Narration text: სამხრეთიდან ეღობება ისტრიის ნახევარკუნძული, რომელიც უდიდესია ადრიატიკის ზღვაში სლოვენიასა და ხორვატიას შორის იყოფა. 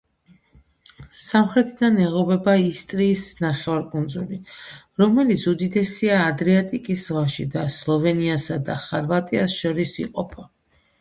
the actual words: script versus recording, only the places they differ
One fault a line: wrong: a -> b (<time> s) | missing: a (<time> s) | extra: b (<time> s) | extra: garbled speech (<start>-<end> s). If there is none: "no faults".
extra: და (7.6 s)